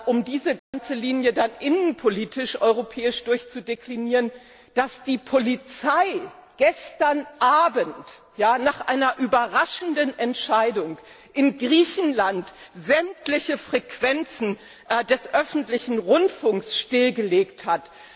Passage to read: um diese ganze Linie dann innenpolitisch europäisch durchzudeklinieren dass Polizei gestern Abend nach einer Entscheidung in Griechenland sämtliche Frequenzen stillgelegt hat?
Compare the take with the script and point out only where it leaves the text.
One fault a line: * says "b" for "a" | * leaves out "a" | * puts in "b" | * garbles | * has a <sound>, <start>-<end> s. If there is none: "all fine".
* has a dropout, 0.6-0.7 s
* puts in "die"
* puts in "überraschenden"
* puts in "des öffentlichen Rundfunks"